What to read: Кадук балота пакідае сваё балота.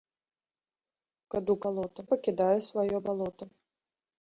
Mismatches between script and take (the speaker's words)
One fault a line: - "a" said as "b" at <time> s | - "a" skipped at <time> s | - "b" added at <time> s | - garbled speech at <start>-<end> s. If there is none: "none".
none